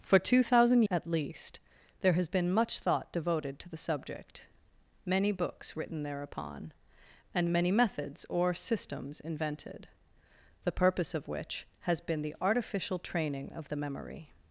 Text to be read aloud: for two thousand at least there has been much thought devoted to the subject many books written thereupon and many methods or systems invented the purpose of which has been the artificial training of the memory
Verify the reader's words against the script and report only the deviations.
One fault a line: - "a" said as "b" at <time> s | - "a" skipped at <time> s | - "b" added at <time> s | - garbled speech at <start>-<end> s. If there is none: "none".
none